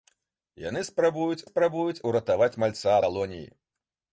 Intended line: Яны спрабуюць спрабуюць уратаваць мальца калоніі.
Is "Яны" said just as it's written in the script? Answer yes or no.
yes